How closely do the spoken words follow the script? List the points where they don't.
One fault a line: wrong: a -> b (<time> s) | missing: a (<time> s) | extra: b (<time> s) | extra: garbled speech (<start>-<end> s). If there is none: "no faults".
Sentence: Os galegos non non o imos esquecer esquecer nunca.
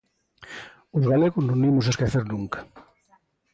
missing: non (1.6 s)
missing: esquecer (2.2 s)